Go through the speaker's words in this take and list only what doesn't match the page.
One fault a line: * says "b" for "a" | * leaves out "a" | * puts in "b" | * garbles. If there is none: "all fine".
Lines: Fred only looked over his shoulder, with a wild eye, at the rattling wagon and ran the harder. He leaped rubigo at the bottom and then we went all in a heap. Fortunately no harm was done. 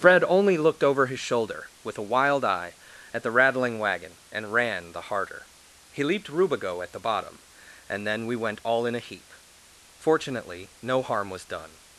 all fine